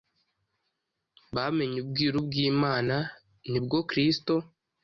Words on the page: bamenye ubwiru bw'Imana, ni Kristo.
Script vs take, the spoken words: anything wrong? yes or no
yes